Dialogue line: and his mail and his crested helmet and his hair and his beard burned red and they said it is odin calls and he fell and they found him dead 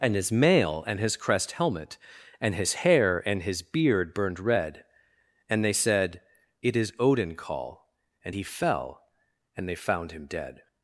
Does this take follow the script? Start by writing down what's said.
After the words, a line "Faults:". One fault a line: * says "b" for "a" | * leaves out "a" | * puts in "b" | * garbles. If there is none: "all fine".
and his mail and his crest helmet and his hair and his beard burned red and they said it is odin call and he fell and they found him dead
Faults:
* says "crest" for "crested"
* says "call" for "calls"